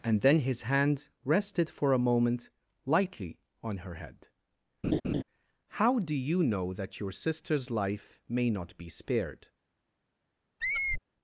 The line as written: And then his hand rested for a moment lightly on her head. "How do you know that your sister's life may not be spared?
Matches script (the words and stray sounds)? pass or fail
fail